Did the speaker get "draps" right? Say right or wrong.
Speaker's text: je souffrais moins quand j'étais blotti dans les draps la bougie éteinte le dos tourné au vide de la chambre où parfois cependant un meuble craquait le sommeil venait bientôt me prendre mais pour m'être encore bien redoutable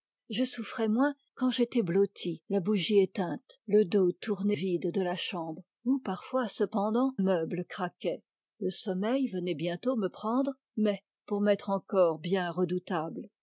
wrong